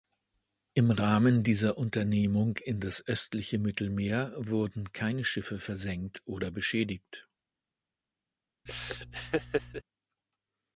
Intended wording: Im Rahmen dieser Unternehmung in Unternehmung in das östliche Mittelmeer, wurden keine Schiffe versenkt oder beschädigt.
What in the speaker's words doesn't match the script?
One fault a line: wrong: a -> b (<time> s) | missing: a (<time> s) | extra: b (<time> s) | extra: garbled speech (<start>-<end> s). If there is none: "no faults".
missing: Unternehmung in (2.8 s)